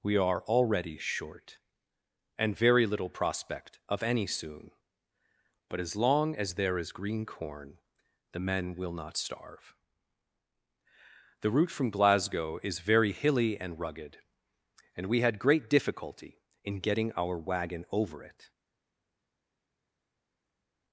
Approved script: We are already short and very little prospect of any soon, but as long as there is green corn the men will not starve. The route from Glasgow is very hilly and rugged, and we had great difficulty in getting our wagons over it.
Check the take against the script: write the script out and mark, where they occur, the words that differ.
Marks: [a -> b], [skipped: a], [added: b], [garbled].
We are already short and very little prospect of any soon, but as long as there is green corn the men will not starve. The route from Glasgow is very hilly and rugged, and we had great difficulty in getting our [wagons -> wagon] over it.